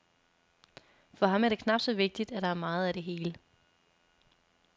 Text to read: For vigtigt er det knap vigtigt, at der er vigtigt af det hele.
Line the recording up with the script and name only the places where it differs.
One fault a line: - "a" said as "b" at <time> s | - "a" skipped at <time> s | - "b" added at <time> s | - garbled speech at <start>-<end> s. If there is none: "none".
- "vigtigt" said as "ham" at 1.3 s
- "så" added at 1.8 s
- "vigtigt" said as "meget" at 2.5 s